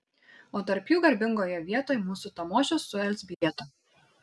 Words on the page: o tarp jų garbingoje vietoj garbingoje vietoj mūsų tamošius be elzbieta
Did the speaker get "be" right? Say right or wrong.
wrong